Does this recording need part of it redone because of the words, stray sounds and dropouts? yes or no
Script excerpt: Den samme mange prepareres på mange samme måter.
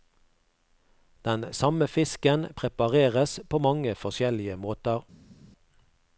yes